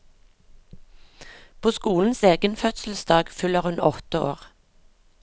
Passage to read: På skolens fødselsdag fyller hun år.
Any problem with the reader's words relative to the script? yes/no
yes